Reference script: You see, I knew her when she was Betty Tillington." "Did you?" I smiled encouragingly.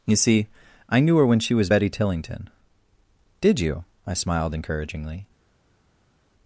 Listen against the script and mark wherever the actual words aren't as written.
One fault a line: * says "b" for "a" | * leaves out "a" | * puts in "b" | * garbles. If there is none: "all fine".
all fine